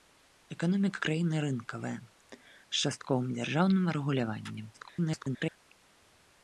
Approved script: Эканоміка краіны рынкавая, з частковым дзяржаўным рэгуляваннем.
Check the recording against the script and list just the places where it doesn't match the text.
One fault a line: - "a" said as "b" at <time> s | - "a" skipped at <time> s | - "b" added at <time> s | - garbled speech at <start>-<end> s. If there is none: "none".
- garbled speech at 4.7-5.6 s